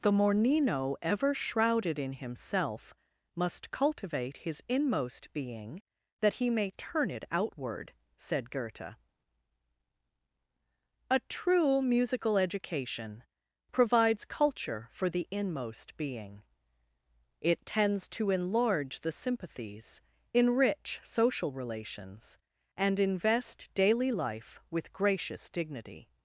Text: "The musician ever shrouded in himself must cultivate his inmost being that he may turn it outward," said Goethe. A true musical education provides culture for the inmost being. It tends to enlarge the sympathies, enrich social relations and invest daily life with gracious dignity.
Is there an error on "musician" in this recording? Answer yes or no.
yes